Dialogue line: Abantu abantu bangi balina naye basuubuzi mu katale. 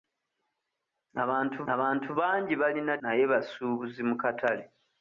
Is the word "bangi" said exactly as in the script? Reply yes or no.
yes